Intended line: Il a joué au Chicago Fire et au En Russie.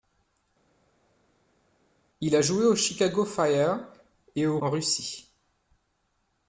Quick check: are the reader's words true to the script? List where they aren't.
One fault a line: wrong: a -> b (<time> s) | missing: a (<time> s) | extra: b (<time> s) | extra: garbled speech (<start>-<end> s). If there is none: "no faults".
no faults